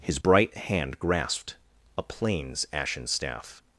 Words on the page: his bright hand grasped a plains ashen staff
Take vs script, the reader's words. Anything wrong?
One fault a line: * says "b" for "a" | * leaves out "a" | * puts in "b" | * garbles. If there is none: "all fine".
all fine